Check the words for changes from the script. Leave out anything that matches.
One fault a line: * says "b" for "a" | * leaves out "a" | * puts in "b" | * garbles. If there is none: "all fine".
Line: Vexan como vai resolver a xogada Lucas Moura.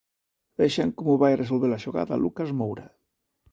all fine